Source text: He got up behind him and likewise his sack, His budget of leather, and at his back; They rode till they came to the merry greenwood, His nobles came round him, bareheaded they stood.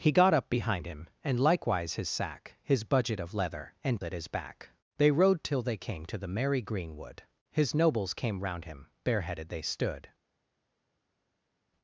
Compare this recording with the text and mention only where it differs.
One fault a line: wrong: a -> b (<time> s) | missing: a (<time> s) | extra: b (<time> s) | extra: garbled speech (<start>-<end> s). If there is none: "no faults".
no faults